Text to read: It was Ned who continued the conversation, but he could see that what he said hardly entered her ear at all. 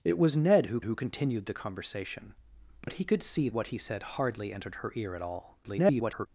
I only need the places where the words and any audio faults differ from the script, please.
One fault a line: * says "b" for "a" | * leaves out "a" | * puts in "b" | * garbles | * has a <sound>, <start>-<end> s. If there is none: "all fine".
* puts in "who"
* has a dropout, 2.8-2.9 s
* leaves out "that"
* garbles